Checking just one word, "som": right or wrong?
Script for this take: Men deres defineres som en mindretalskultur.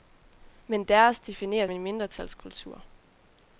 wrong